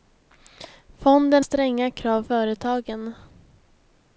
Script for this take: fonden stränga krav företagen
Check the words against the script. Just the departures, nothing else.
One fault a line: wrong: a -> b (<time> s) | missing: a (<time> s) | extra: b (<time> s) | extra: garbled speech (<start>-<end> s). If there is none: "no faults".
no faults